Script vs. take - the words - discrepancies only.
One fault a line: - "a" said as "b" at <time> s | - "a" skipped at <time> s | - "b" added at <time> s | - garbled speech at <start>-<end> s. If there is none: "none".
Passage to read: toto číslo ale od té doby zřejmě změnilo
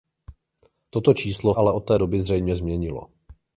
none